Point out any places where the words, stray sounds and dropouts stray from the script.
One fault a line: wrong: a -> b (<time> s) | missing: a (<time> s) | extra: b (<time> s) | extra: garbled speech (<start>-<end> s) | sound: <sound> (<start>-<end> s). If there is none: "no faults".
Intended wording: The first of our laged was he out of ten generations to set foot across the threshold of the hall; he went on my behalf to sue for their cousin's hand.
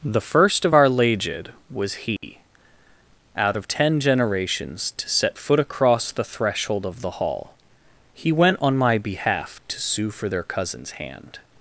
sound: dropout (2.2-2.2 s)